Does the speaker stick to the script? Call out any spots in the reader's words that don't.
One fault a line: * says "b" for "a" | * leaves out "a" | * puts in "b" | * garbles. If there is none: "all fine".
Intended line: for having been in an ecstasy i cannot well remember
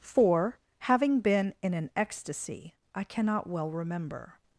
all fine